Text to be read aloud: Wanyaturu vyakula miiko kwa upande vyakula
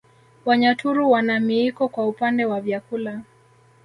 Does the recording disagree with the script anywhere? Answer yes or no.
yes